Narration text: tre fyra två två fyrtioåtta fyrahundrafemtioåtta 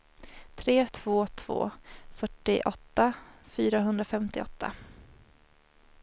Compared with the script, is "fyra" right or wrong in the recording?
wrong